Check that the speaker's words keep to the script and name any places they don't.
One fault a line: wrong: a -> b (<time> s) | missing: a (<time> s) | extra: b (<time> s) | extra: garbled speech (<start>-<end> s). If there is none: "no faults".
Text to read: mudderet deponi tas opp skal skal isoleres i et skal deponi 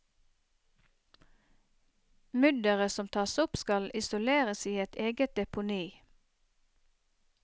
wrong: deponi -> som (2.9 s)
missing: skal (3.9 s)
wrong: skal -> eget (5.1 s)